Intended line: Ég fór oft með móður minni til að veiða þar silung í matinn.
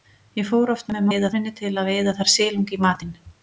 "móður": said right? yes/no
no